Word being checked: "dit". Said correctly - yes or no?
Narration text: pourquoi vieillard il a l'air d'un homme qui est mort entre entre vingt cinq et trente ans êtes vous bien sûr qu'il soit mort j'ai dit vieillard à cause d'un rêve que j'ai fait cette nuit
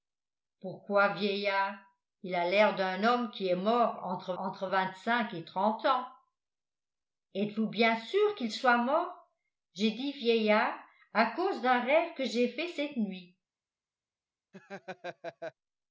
yes